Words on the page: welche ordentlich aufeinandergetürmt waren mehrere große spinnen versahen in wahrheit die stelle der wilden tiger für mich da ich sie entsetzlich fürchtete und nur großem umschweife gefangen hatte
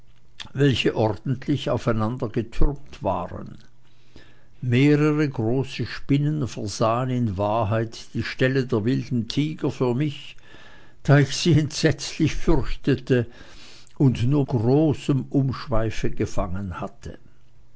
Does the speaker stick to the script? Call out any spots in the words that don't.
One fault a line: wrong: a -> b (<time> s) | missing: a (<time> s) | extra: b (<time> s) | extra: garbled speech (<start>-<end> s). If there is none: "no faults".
no faults